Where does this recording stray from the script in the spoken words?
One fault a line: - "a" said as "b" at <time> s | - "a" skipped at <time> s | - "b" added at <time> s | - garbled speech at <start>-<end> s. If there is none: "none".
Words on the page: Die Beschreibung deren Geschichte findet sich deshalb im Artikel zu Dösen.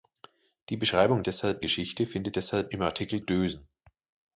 - "deren" said as "deshalb" at 1.2 s
- "sich" skipped at 2.4 s
- "zu" skipped at 3.2 s